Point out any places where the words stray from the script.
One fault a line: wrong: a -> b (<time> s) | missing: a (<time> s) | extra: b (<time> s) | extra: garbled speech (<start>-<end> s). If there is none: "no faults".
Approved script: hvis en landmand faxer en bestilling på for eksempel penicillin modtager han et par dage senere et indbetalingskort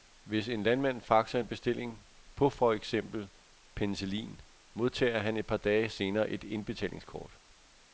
no faults